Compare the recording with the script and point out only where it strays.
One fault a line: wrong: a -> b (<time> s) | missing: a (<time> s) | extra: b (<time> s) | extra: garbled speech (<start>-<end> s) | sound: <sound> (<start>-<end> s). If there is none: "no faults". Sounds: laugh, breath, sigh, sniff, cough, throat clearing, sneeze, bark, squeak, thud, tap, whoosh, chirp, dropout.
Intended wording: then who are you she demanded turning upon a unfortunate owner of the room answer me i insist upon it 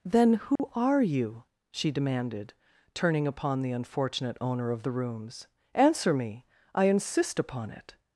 sound: dropout (0.6-0.6 s)
wrong: a -> the (3.6 s)
wrong: room -> rooms (4.9 s)